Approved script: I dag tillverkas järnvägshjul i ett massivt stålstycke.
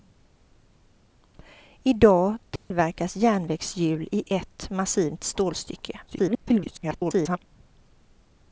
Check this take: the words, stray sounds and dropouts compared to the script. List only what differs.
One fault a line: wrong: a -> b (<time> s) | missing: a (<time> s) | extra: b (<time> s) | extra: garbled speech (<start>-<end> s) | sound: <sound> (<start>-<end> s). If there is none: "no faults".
sound: dropout (2.6-2.7 s)
extra: garbled speech (6.1-7.4 s)